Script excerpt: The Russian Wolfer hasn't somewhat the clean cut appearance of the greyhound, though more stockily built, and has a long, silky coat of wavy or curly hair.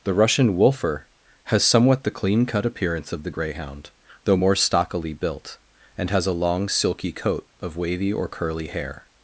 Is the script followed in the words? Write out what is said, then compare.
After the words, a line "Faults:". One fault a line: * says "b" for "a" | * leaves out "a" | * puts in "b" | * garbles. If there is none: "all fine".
The Russian Wolfer has somewhat the clean cut appearance of the greyhound, though more stockily built, and has a long, silky coat of wavy or curly hair.
Faults:
* says "has" for "hasn't"